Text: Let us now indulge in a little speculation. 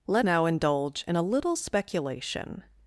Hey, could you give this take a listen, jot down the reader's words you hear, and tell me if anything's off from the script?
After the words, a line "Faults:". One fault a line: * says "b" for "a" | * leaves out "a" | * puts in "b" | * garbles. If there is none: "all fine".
Let now indulge in a little speculation.
Faults:
* leaves out "us"